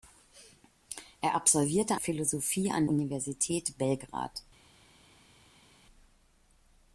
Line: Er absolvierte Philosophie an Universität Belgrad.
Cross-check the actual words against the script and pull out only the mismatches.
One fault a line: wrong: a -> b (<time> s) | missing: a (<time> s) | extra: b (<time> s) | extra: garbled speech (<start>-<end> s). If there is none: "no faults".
no faults